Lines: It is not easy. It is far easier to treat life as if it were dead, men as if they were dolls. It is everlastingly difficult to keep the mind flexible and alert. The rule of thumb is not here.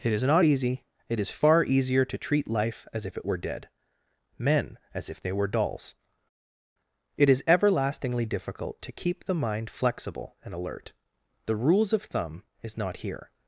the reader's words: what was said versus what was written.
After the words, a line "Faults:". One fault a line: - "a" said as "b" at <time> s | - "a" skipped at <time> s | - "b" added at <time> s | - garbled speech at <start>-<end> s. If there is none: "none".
It is not easy. It is far easier to treat life as if it were dead, men as if they were dolls. It is everlastingly difficult to keep the mind flexible and alert. The rules of thumb is not here.
Faults:
- "rule" said as "rules" at 11.5 s